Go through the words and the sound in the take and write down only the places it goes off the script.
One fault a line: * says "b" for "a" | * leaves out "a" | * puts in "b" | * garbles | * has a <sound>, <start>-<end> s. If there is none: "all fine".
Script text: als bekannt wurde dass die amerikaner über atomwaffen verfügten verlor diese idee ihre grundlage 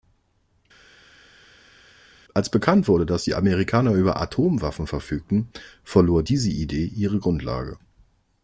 all fine